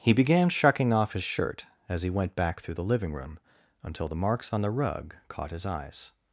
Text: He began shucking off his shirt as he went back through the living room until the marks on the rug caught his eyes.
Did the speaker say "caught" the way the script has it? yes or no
yes